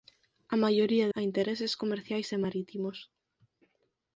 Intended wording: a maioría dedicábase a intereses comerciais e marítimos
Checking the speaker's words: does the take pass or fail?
fail